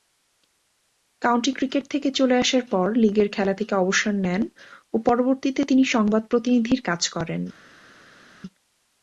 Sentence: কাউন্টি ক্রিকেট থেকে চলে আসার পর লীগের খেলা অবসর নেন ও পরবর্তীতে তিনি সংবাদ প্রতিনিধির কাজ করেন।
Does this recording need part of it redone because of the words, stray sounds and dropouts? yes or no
yes